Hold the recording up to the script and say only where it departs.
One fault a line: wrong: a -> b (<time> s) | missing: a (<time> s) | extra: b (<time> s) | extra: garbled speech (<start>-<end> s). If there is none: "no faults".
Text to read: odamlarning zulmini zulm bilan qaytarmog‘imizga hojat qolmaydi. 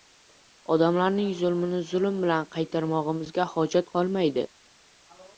no faults